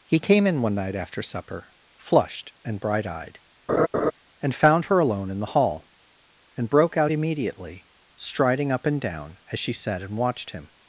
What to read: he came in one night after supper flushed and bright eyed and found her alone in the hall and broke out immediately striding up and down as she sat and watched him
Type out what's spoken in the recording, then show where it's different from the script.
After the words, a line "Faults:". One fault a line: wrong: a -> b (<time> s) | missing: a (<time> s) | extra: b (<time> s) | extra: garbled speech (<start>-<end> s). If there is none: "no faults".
he came in one night after supper flushed and bright eyed and found her alone in the hall and broke out immediately striding up and down as she sat and watched him
Faults:
no faults